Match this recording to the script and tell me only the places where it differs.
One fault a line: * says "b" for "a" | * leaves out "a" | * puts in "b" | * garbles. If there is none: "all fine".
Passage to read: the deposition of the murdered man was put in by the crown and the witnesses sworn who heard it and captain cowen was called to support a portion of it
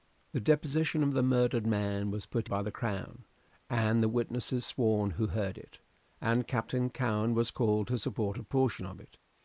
* leaves out "in"